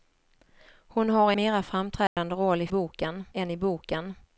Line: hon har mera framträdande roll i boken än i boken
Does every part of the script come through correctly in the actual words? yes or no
yes